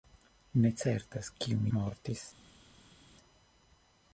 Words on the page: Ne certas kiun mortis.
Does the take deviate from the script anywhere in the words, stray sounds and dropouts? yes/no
no